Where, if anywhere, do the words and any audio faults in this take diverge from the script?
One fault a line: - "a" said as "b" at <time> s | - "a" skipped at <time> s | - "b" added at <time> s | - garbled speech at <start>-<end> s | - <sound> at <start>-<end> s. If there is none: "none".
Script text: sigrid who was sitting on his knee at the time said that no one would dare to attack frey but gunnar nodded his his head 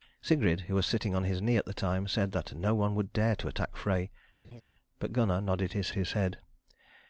- laugh at 4.4-4.6 s